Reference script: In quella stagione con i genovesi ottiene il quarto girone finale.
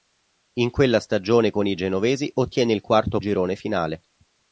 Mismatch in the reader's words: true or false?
false